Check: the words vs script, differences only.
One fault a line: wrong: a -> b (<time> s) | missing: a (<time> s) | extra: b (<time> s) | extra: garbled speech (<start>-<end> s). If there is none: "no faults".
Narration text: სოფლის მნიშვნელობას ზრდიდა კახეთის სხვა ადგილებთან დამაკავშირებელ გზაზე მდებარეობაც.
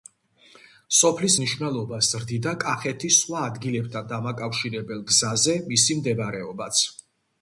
extra: მისი (5.7 s)